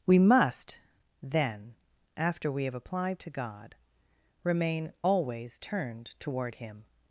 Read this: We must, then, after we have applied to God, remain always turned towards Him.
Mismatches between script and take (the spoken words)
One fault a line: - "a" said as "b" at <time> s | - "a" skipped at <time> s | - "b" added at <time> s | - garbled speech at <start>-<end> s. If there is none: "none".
- "towards" said as "toward" at 6.2 s